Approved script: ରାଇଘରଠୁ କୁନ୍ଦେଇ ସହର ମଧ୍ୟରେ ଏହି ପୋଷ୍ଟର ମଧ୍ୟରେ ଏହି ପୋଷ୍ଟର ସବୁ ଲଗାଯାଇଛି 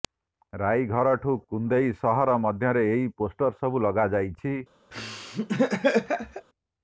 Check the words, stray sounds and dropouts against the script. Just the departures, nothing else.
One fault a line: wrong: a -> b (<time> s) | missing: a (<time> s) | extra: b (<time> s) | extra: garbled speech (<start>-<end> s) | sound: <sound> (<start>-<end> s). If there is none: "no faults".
missing: ମଧ୍ୟରେ ଏହି ପୋଷ୍ଟର (3.5 s)
sound: laugh (4.9-6.5 s)